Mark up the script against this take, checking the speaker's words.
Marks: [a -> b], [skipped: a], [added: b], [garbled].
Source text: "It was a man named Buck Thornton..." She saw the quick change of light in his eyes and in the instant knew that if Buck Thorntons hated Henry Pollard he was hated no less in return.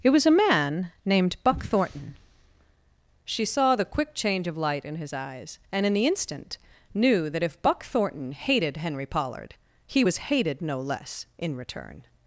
"It was a man named Buck Thornton..." She saw the quick change of light in his eyes and in the instant knew that if Buck [Thorntons -> Thornton] hated Henry Pollard he was hated no less in return.